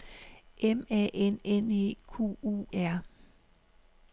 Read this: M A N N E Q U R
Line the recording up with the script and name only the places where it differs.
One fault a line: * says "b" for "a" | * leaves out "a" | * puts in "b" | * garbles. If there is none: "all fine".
all fine